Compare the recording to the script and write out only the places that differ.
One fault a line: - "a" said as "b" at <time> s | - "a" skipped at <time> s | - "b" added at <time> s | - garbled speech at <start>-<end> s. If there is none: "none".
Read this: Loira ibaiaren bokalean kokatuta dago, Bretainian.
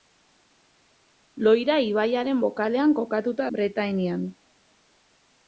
- "dago" skipped at 3.5 s